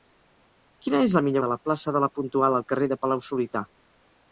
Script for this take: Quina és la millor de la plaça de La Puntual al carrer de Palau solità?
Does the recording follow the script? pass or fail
pass